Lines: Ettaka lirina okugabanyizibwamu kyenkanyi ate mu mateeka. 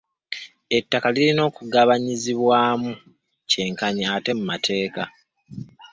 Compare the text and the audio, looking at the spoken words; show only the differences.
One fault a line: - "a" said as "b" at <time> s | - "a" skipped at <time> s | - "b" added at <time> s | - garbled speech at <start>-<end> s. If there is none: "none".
none